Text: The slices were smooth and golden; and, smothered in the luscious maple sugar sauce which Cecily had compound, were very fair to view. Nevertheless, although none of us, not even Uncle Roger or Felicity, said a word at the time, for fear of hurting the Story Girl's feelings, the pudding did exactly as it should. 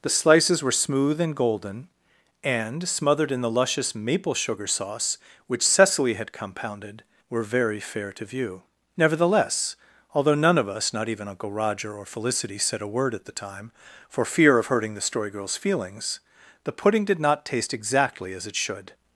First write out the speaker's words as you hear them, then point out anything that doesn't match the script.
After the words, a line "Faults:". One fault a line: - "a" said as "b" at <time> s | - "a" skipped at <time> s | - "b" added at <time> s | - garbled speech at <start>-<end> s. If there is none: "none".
The slices were smooth and golden; and, smothered in the luscious maple sugar sauce which Cecily had compounded, were very fair to view. Nevertheless, although none of us, not even Uncle Roger or Felicity, said a word at the time, for fear of hurting the Story Girl's feelings, the pudding did not taste exactly as it should.
Faults:
- "compound" said as "compounded" at 6.3 s
- "not taste" added at 17.2 s